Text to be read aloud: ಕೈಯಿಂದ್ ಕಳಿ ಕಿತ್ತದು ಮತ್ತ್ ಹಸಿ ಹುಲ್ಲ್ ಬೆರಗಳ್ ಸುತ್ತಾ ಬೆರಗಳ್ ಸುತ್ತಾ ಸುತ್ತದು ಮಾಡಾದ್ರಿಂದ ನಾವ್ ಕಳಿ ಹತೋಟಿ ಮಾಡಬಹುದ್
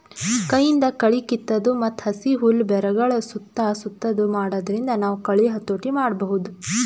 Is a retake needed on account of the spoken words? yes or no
yes